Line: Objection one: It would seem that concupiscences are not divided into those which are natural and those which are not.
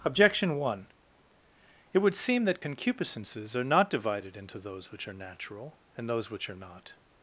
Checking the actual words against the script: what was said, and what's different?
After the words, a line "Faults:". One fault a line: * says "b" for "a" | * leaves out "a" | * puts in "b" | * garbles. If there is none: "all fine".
Objection one: It would seem that concupiscences are not divided into those which are natural and those which are not.
Faults:
all fine